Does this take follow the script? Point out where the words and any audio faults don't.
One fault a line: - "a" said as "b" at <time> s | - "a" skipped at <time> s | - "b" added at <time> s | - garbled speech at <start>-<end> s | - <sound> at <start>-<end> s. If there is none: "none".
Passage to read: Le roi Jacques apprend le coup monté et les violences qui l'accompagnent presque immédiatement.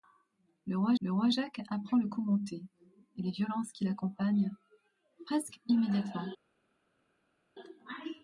- "le roi" added at 1.0 s